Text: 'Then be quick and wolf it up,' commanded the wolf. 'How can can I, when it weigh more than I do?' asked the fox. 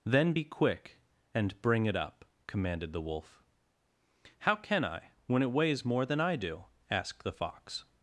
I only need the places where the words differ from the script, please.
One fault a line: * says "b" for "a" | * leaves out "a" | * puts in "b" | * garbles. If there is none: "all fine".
* says "bring" for "wolf"
* leaves out "can"
* says "weighs" for "weigh"